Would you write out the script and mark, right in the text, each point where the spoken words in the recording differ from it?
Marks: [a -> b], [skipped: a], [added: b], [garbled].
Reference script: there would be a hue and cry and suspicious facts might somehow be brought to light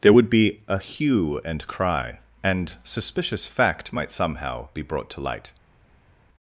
there would be a hue and cry and suspicious [facts -> fact] might somehow be brought to light